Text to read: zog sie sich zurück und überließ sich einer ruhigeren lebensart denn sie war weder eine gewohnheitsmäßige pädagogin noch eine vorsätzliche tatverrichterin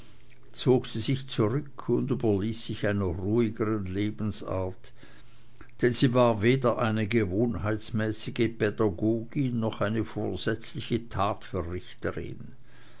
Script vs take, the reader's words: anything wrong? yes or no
no